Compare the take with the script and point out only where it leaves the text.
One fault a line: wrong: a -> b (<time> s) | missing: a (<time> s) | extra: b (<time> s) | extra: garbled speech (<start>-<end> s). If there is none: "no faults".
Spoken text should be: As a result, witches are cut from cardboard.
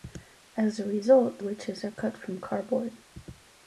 no faults